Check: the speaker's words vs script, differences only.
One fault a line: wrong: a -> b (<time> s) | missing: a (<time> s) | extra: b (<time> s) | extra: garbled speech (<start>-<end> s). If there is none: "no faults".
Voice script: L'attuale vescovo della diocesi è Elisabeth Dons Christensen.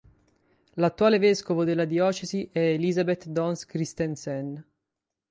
no faults